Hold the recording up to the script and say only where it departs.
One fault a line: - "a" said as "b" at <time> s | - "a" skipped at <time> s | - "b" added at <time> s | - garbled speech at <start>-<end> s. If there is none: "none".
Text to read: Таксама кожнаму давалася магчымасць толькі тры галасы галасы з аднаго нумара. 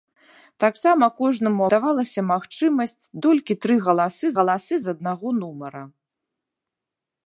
none